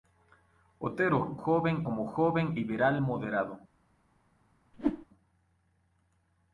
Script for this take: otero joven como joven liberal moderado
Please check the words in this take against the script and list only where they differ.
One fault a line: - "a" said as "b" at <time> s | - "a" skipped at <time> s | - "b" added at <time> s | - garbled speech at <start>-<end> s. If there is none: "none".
none